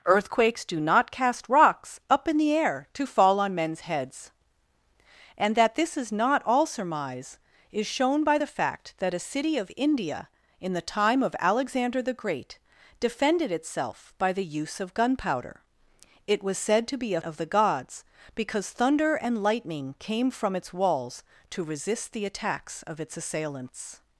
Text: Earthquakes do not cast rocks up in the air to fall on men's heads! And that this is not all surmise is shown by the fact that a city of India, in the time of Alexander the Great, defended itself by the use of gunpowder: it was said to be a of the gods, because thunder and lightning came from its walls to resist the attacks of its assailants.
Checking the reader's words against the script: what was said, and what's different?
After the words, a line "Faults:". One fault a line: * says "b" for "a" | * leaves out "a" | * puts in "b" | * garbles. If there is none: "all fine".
Earthquakes do not cast rocks up in the air to fall on men's heads! And that this is not all surmise is shown by the fact that a city of India, in the time of Alexander the Great, defended itself by the use of gunpowder: it was said to be a of the gods, because thunder and lightning came from its walls to resist the attacks of its assailants.
Faults:
all fine